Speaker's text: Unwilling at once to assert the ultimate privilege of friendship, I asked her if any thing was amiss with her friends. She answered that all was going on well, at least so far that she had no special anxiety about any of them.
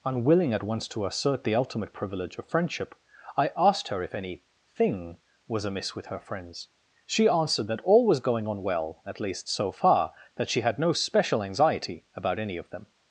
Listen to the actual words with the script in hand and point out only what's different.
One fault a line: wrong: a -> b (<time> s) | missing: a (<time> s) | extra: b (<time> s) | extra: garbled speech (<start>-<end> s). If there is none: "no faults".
no faults